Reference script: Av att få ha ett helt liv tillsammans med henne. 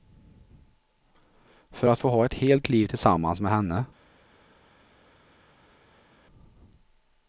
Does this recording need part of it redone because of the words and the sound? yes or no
yes